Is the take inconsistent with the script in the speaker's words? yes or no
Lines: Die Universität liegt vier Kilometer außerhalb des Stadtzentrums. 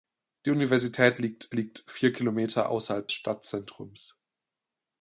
yes